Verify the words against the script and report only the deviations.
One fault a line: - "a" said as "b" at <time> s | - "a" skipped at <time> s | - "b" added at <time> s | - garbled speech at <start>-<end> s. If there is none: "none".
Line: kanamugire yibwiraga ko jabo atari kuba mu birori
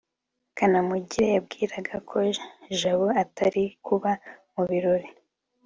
none